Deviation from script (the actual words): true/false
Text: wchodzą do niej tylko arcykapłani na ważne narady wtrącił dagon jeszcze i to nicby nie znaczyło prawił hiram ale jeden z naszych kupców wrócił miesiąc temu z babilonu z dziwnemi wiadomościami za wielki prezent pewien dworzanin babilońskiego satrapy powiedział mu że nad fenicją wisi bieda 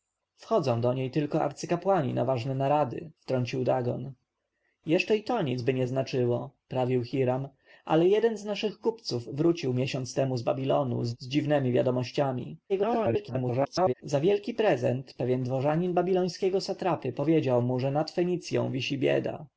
true